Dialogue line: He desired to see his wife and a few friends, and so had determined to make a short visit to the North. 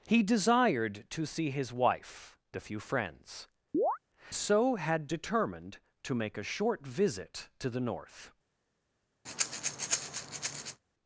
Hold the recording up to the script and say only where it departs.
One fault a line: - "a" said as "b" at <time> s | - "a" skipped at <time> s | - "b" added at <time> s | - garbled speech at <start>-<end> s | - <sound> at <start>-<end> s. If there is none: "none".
- "and" skipped at 2.4 s
- "and" skipped at 3.5 s
- chirp at 3.7-4.0 s
- breath at 9.3-10.8 s